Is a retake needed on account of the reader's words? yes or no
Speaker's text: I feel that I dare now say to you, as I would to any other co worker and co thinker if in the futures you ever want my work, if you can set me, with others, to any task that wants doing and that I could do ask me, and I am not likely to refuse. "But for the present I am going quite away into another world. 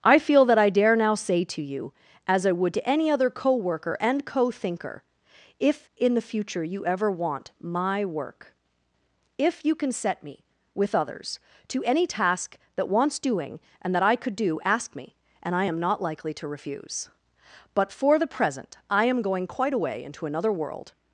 yes